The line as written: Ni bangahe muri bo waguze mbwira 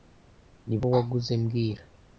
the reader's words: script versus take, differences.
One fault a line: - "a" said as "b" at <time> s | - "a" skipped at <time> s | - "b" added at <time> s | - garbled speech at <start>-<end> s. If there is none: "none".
- "bangahe muri" skipped at 0.8 s